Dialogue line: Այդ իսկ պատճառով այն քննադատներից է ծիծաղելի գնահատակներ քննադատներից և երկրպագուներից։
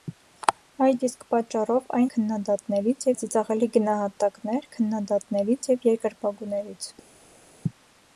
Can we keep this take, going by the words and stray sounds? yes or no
yes